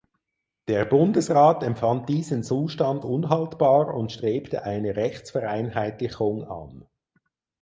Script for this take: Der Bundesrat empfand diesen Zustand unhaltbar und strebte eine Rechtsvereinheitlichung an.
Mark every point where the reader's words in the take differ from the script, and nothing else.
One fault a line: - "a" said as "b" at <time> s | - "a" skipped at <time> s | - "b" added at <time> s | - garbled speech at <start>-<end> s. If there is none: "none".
none